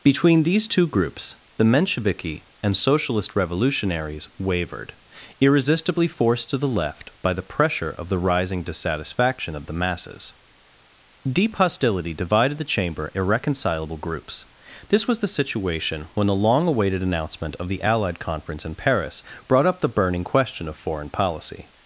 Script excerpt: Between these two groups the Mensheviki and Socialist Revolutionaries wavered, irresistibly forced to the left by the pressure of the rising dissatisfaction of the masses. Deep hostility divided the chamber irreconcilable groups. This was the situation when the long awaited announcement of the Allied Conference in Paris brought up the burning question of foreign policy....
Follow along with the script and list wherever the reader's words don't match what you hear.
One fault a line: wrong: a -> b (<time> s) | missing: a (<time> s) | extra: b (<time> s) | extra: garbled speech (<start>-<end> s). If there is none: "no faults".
no faults